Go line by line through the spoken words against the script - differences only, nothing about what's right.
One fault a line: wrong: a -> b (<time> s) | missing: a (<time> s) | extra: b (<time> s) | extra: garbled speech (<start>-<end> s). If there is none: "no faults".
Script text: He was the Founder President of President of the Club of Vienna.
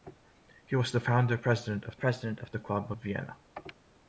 no faults